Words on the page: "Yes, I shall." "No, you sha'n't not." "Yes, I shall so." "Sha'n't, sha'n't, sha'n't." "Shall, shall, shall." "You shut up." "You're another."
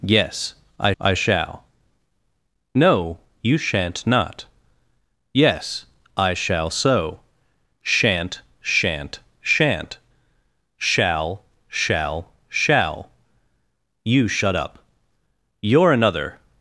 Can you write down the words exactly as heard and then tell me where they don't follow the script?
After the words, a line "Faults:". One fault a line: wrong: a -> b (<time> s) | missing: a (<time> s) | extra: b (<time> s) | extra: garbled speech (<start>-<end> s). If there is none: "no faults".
"Yes, I I shall." "No, you sha'n't not." "Yes, I shall so." "Sha'n't, sha'n't, sha'n't." "Shall, shall, shall." "You shut up." "You're another."
Faults:
extra: I (1.0 s)